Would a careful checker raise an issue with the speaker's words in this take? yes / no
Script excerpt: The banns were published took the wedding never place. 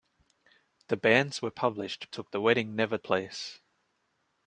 no